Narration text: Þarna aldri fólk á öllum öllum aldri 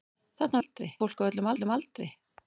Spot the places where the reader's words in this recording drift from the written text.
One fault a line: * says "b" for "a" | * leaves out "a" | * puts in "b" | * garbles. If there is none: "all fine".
all fine